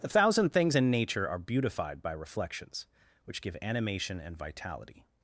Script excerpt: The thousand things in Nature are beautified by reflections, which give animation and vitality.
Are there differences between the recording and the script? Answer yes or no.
no